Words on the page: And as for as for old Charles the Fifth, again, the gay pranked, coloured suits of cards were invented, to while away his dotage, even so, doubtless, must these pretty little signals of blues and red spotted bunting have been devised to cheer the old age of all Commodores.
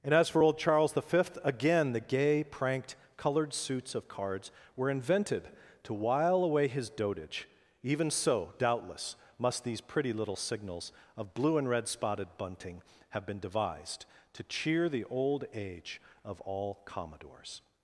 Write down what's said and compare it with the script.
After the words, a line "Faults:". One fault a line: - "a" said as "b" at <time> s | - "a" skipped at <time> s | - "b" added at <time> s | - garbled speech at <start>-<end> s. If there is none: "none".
And as for old Charles the Fifth, again, the gay pranked, coloured suits of cards were invented, to while away his dotage, even so, doubtless, must these pretty little signals of blue and red spotted bunting have been devised to cheer the old age of all Commodores.
Faults:
- "as for" skipped at 0.4 s
- "blues" said as "blue" at 11.3 s